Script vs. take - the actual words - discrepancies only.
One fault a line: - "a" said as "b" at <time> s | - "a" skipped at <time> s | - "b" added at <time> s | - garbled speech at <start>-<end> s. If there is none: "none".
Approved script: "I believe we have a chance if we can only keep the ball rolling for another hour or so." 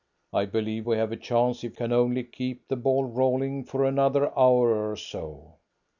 - "we" skipped at 1.8 s